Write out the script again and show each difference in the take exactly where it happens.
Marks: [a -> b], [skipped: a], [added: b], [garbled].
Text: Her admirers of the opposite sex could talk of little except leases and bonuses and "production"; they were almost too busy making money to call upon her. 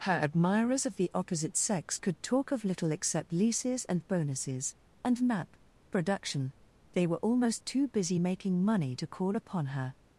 Her admirers of the opposite sex could talk of little except leases and bonuses and [added: map] "production"; they were almost too busy making money to call upon her.